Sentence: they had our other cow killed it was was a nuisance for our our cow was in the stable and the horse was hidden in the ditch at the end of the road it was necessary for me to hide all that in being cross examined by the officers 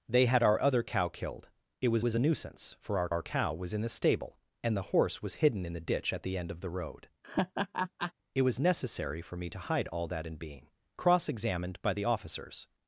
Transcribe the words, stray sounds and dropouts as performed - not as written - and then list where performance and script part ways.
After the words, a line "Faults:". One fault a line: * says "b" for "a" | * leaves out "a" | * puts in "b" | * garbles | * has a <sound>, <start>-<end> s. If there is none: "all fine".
they had our other cow killed it was was a nuisance for our our cow was in the stable and the horse was hidden in the ditch at the end of the road it was necessary for me to hide all that in being cross examined by the officers
Faults:
* has a laugh, 7.2-8.1 s